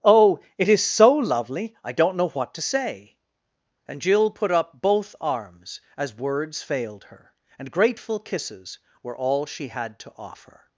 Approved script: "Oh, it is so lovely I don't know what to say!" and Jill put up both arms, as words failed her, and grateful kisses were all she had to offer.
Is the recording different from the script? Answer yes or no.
no